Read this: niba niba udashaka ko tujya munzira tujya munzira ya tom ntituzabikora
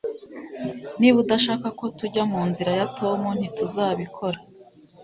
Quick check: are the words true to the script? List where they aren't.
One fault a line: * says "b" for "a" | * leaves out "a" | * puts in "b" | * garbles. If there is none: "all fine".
* leaves out "niba"
* leaves out "tujya munzira"